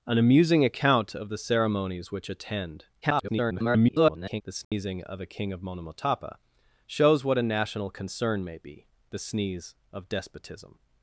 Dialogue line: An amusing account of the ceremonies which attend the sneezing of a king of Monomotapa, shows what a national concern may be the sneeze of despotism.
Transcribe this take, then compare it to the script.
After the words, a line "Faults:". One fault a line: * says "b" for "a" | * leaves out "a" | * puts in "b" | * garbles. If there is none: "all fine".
An amusing account of the ceremonies which attend [garbled] the sneezing of a king of Monomotapa, shows what a national concern may be the sneeze of despotism.
Faults:
* garbles